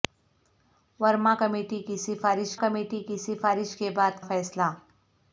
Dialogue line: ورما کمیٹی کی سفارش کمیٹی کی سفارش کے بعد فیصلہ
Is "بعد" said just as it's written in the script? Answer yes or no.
yes